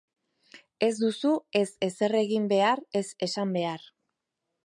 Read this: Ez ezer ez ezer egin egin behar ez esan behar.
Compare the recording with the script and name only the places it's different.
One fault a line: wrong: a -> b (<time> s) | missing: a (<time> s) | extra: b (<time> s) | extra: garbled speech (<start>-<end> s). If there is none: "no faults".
wrong: ezer -> duzu (1.0 s)
missing: egin (2.5 s)